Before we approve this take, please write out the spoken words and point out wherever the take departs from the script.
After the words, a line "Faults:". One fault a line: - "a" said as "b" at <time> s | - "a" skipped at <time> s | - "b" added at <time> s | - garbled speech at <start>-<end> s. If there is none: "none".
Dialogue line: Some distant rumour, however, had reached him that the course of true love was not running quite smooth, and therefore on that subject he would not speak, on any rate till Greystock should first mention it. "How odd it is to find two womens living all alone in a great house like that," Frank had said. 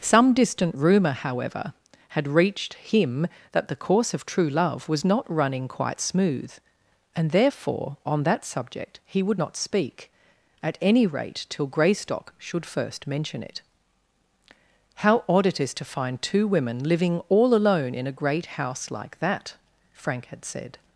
Some distant rumour, however, had reached him that the course of true love was not running quite smooth, and therefore on that subject he would not speak, at any rate till Greystock should first mention it. "How odd it is to find two women living all alone in a great house like that," Frank had said.
Faults:
- "on" said as "at" at 10.6 s
- "womens" said as "women" at 16.5 s